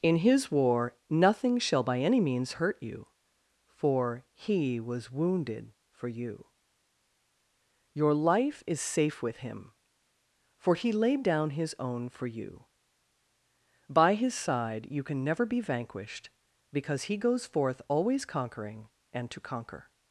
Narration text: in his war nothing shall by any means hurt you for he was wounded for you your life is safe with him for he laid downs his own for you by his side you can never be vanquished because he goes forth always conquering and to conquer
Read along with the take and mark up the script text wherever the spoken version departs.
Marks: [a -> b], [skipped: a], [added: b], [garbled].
in his war nothing shall by any means hurt you for he was wounded for you your life is safe with him for he laid [downs -> down] his own for you by his side you can never be vanquished because he goes forth always conquering and to conquer